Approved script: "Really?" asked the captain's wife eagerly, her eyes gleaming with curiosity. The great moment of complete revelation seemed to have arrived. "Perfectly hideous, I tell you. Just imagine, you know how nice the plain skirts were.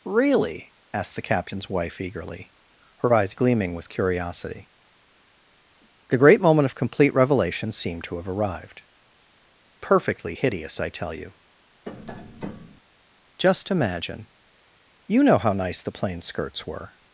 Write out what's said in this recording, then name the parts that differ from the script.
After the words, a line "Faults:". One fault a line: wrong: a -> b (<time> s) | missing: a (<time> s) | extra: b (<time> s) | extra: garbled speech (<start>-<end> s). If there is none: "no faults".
"Really?" asked the captain's wife eagerly, her eyes gleaming with curiosity. The great moment of complete revelation seemed to have arrived. "Perfectly hideous, I tell you. Just imagine, you know how nice the plain skirts were.
Faults:
no faults